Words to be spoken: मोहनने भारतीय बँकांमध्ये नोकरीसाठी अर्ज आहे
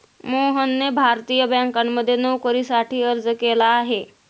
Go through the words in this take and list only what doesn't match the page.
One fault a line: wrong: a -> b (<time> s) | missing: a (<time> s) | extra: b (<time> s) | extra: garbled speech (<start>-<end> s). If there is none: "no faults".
extra: केला (3.4 s)